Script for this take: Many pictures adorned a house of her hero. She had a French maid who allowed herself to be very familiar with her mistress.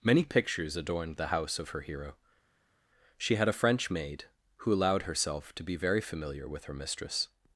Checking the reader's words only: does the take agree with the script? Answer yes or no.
no